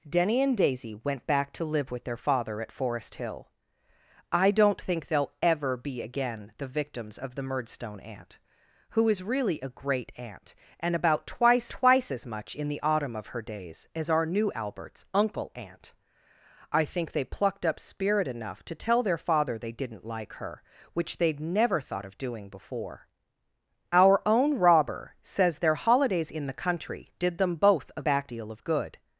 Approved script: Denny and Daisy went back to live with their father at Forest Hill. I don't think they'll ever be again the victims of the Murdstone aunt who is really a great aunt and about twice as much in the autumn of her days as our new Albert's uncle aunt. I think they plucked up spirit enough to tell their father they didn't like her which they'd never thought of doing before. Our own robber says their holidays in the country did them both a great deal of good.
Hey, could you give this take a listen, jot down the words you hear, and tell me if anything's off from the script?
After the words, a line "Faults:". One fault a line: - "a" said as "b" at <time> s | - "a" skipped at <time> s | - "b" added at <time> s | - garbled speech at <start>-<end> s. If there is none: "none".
Denny and Daisy went back to live with their father at Forest Hill. I don't think they'll ever be again the victims of the Murdstone aunt who is really a great aunt and about twice twice as much in the autumn of her days as our new Albert's uncle aunt. I think they plucked up spirit enough to tell their father they didn't like her which they'd never thought of doing before. Our own robber says their holidays in the country did them both a back deal of good.
Faults:
- "twice" added at 11.7 s
- "great" said as "back" at 28.0 s